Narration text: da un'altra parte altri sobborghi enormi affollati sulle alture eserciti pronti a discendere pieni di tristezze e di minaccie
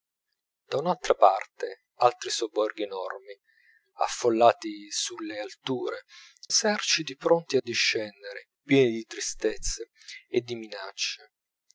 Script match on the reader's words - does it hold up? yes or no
yes